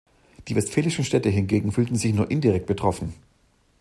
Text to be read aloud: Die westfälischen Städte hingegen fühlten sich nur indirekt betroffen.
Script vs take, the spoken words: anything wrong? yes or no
no